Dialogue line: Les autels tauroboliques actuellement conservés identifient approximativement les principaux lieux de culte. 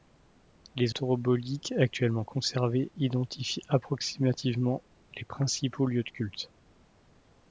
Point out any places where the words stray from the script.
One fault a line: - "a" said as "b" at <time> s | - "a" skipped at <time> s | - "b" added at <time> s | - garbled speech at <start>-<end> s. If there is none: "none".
- "autels" skipped at 0.9 s